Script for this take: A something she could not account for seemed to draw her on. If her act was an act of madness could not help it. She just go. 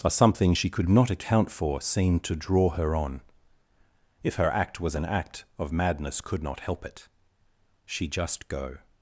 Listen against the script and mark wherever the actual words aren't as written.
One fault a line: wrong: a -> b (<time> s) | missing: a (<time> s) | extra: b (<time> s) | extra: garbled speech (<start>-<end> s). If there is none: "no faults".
no faults